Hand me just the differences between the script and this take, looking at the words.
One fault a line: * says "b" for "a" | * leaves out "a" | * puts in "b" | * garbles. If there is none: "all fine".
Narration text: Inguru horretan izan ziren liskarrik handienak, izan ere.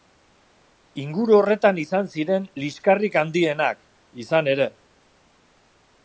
all fine